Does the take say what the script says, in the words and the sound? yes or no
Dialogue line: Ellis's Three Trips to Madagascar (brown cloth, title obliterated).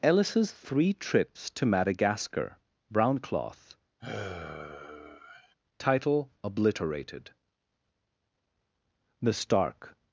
no